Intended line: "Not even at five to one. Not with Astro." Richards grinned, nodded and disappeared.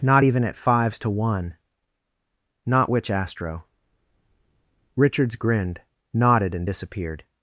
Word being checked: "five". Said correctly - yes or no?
no